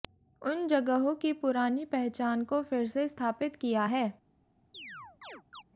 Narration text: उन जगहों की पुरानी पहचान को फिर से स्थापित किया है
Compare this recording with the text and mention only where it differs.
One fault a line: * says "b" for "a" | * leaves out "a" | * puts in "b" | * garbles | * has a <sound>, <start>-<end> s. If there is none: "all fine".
* has a chirp, 4.7-5.6 s